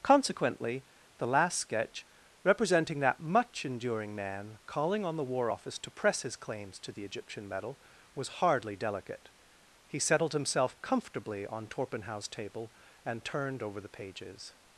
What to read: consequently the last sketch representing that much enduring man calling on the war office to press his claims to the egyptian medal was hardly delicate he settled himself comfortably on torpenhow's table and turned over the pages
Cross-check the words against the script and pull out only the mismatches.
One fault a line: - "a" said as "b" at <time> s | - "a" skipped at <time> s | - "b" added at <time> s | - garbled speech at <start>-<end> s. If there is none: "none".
none